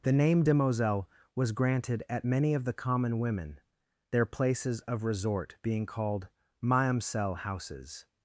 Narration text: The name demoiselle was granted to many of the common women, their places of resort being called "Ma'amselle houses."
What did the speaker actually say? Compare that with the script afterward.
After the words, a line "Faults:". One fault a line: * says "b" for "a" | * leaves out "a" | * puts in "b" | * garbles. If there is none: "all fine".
The name demoiselle was granted at many of the common women, their places of resort being called "Ma'amselle houses."
Faults:
* says "at" for "to"